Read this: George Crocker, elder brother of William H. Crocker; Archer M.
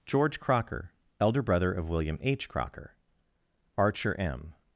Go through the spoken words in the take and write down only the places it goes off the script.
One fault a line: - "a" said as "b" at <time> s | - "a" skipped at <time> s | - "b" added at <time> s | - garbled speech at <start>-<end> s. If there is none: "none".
none